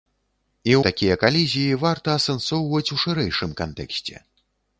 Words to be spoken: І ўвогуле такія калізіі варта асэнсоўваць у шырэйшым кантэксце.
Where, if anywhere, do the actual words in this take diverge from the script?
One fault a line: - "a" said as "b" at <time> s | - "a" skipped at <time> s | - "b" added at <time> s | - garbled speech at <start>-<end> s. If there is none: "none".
- "ўвогуле" skipped at 0.8 s